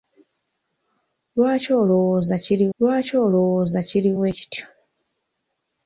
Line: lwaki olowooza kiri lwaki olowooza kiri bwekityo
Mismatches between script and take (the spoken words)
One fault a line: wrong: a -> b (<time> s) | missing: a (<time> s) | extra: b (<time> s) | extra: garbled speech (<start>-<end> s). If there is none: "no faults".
no faults